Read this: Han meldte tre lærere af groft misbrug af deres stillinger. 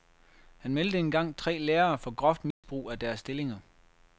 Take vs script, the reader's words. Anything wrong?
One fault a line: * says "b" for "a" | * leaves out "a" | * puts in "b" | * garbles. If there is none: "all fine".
* puts in "engang"
* says "for" for "af"